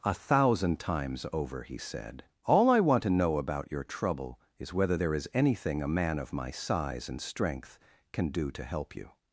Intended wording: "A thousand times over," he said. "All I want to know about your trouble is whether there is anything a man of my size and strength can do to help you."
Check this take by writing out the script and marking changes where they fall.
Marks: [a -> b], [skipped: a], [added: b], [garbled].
"A thousand times over," he said. "All I want to know about your trouble is whether there is anything a man of my size and strength can do to help you."